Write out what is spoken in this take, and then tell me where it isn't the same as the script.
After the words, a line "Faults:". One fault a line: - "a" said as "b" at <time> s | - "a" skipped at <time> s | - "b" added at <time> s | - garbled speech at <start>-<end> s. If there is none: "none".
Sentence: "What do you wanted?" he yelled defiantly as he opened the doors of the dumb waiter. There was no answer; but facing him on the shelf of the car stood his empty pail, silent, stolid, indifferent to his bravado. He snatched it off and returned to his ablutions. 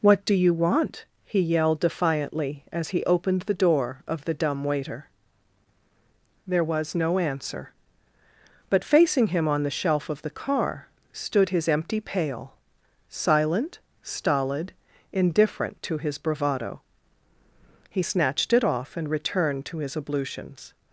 "What do you want?" he yelled defiantly as he opened the door of the dumb waiter. There was no answer; but facing him on the shelf of the car stood his empty pail, silent, stolid, indifferent to his bravado. He snatched it off and returned to his ablutions.
Faults:
- "wanted" said as "want" at 0.5 s
- "doors" said as "door" at 3.5 s